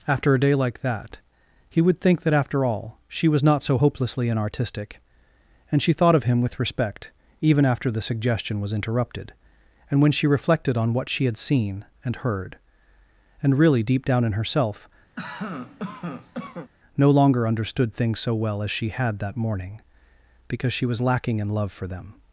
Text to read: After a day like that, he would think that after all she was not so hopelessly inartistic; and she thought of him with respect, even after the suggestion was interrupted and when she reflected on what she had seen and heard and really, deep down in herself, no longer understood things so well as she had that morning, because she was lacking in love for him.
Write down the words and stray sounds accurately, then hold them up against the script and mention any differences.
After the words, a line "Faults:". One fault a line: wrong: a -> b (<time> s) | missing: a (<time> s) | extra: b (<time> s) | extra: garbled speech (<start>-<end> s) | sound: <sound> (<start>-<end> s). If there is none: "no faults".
After a day like that, he would think that after all she was not so hopelessly inartistic; and she thought of him with respect, even after the suggestion was interrupted and when she reflected on what she had seen and heard and really, deep down in herself, no longer understood things so well as she had that morning, because she was lacking in love for them.
Faults:
sound: cough (15.2-16.7 s)
wrong: him -> them (21.9 s)